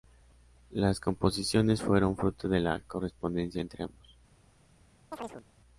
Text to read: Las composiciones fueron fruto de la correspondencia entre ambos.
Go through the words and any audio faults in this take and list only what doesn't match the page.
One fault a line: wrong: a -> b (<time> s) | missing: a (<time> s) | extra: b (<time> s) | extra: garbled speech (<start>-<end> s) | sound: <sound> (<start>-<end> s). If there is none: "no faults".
sound: chirp (5.1-5.4 s)